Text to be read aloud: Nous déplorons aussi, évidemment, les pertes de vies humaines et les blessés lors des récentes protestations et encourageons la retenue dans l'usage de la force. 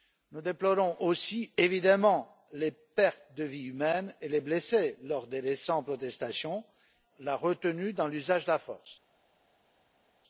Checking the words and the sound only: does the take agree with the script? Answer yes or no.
no